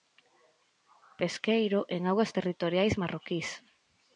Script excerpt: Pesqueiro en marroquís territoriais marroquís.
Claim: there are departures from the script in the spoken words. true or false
true